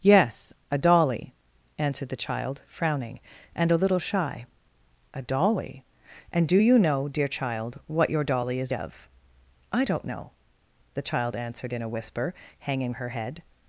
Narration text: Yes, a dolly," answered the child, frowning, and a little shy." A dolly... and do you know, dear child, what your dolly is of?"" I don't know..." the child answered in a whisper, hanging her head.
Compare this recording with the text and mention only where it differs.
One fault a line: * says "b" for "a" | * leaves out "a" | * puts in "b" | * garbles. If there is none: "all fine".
all fine